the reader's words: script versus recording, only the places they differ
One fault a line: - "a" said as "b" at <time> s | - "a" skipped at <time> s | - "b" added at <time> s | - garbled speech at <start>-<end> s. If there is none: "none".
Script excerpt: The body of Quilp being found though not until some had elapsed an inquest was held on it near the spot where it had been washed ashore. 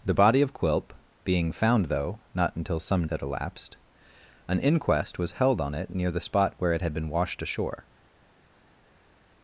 none